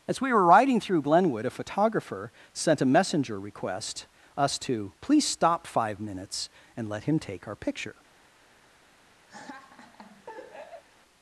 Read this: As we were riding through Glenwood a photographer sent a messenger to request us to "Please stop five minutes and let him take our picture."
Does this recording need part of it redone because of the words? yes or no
yes